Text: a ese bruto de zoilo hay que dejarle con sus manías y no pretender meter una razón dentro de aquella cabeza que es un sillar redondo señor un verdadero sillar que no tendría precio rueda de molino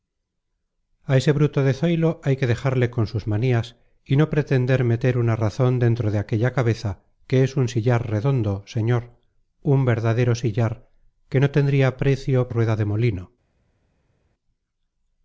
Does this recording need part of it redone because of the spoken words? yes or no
no